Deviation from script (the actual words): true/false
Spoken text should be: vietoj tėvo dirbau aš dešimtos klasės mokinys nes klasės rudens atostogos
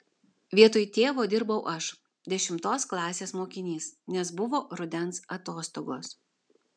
true